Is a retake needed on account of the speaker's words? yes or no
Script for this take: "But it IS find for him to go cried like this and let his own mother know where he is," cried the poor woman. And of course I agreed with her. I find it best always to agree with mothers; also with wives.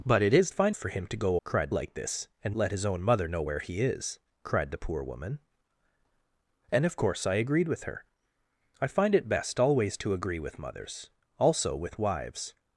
no